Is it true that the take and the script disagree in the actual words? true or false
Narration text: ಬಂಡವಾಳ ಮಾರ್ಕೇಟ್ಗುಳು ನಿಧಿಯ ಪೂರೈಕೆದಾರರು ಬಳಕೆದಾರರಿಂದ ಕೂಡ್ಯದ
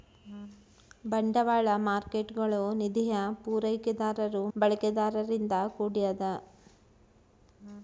false